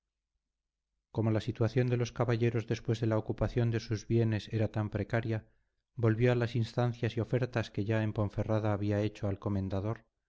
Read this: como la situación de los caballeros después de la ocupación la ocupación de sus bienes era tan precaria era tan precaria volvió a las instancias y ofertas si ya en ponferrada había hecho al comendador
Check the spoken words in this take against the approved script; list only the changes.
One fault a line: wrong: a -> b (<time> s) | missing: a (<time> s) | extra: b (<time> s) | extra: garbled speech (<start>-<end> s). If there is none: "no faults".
missing: la ocupación (3.7 s)
missing: era tan precaria (5.5 s)
wrong: si -> que (7.7 s)